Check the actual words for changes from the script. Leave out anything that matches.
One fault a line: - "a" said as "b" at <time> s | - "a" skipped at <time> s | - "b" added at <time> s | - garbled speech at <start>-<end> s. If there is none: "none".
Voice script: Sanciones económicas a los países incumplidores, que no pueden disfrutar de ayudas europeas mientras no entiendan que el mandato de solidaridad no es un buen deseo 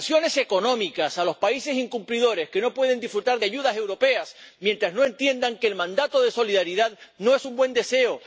none